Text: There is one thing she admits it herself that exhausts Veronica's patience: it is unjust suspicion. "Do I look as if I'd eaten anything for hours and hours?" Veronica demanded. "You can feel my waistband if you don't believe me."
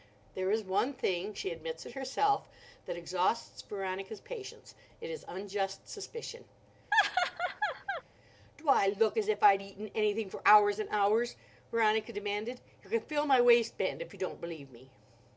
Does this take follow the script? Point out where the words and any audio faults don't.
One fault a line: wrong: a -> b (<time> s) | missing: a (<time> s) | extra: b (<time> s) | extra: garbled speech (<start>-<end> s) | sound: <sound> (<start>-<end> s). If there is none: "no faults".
sound: laugh (6.9-8.0 s)